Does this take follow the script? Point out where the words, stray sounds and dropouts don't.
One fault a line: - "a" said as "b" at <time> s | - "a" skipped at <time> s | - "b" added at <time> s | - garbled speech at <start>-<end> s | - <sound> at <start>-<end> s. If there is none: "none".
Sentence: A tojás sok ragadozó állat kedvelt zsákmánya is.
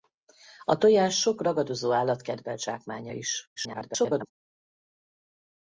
- garbled speech at 3.6-4.3 s